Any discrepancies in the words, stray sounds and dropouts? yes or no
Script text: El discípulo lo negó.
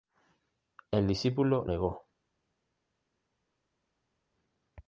yes